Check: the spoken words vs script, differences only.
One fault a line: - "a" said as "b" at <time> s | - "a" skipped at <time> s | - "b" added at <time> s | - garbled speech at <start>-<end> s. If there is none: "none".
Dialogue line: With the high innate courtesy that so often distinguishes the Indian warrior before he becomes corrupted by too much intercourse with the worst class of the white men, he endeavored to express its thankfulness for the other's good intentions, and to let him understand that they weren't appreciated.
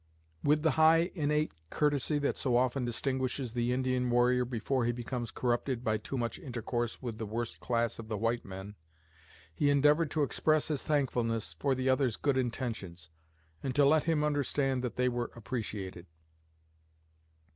- "its" said as "his" at 10.7 s
- "weren't" said as "were" at 15.1 s